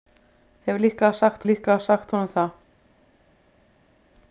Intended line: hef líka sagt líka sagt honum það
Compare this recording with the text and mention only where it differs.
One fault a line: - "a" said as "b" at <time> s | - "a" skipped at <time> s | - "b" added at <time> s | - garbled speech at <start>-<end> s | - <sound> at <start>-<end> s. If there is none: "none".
none